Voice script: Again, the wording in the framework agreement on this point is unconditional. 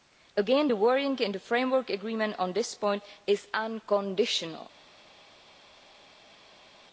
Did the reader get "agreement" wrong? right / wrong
right